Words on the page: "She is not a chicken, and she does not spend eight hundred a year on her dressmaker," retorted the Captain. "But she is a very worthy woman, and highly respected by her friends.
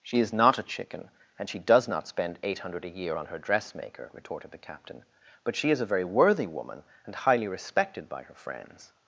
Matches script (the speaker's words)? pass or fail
pass